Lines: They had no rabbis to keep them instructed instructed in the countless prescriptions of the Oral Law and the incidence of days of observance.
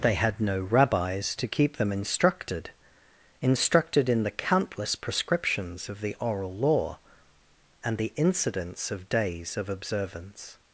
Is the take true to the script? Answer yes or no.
yes